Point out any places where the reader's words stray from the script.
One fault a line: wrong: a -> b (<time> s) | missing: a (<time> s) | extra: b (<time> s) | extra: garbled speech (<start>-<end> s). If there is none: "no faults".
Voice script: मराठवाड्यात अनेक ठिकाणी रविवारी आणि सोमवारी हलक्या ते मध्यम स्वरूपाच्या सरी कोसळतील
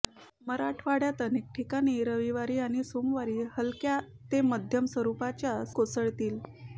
missing: सरी (5.6 s)